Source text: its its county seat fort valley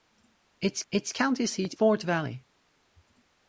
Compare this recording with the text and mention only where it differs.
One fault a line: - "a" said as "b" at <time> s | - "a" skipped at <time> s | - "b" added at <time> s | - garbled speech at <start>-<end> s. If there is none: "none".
none